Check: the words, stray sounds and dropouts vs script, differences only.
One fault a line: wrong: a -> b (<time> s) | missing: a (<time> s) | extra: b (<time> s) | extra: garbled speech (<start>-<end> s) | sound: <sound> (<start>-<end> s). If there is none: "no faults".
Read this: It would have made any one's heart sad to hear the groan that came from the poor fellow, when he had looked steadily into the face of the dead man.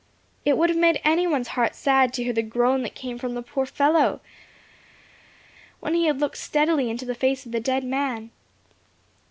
no faults